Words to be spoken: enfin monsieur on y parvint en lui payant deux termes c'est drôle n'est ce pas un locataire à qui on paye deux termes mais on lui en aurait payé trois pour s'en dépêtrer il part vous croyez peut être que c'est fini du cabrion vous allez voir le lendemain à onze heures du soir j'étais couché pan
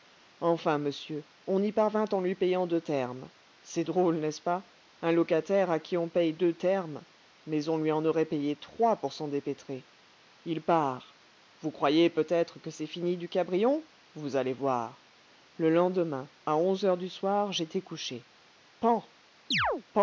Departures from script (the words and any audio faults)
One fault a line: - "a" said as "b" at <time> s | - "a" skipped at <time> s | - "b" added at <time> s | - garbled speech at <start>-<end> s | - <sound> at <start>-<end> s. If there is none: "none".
- chirp at 19.5-19.8 s